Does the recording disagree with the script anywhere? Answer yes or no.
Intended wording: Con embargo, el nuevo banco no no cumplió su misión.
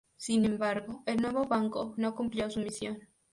yes